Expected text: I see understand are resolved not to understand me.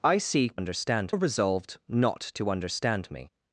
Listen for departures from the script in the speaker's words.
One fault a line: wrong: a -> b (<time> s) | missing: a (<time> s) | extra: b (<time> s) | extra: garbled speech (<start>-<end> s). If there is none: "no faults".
no faults